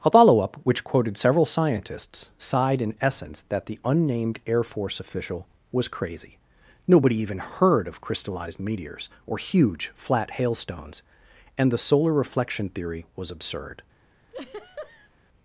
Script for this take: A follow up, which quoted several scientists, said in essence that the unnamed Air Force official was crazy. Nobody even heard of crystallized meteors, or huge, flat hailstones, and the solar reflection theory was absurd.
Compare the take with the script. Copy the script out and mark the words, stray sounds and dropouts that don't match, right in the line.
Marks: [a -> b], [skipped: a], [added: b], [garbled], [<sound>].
A follow up, which quoted several scientists, [said -> sighed] in essence that the unnamed Air Force official was crazy. Nobody even heard of crystallized meteors, or huge, flat hailstones, and the solar reflection theory was absurd. [laugh]